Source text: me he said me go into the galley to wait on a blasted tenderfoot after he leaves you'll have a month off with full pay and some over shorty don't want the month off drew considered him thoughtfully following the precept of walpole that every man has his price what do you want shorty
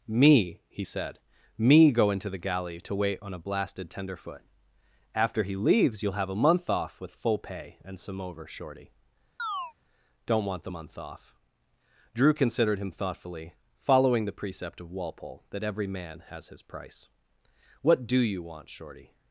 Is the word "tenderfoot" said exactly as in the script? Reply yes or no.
yes